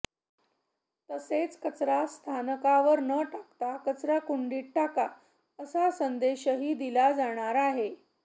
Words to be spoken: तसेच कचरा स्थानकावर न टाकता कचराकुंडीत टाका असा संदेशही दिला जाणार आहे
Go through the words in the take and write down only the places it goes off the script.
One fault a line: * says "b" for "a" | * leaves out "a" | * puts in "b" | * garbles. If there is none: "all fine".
all fine